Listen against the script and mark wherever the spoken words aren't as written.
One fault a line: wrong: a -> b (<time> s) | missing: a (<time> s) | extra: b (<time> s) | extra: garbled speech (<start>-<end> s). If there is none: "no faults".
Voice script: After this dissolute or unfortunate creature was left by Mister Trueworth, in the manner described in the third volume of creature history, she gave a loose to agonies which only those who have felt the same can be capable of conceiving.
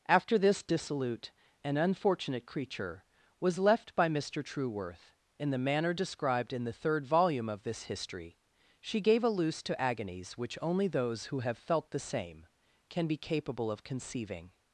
wrong: or -> and (1.6 s)
wrong: creature -> this (7.6 s)